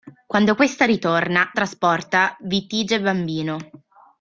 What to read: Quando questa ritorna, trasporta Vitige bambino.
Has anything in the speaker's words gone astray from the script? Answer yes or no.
no